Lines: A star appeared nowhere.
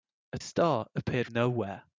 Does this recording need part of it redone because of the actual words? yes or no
no